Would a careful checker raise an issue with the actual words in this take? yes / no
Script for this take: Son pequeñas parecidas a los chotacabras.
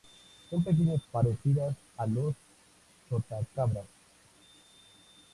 no